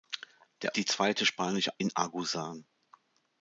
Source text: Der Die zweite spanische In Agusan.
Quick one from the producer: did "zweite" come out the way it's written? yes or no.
yes